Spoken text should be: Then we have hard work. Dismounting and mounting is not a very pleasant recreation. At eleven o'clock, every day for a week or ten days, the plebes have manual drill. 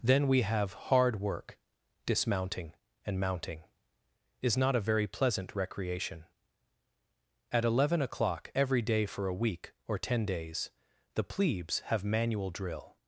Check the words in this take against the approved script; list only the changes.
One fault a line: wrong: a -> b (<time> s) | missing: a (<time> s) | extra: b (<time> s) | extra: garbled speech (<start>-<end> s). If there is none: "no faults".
no faults